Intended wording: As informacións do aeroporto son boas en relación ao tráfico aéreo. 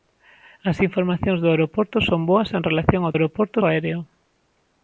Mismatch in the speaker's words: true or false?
true